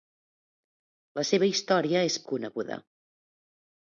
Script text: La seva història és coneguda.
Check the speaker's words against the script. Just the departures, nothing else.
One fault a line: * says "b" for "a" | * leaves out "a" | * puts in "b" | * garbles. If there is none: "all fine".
all fine